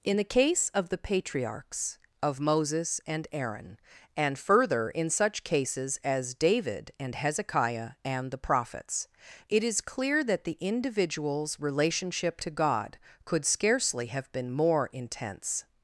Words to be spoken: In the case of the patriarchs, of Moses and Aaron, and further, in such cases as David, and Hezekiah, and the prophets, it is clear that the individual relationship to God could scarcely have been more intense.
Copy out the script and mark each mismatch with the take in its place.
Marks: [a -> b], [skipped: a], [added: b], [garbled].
In the case of the patriarchs, of Moses and Aaron, and further, in such cases as David, and Hezekiah, and the prophets, it is clear that the [individual -> individuals] relationship to God could scarcely have been more intense.